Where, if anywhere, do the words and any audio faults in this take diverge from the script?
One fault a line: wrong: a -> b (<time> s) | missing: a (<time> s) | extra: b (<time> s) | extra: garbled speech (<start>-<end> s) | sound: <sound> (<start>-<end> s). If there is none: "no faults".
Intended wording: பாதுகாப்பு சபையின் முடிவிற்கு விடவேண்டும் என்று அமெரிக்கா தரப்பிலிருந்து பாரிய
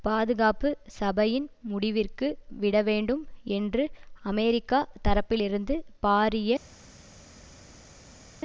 no faults